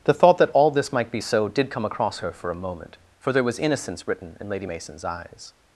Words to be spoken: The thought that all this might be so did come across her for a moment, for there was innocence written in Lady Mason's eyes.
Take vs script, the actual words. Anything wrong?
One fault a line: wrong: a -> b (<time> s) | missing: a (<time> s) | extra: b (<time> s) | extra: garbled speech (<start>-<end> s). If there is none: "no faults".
no faults